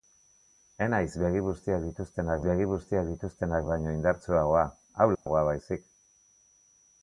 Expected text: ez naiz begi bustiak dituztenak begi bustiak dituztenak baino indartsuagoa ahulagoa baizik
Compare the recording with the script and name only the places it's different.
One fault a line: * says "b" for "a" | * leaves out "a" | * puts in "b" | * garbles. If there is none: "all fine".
all fine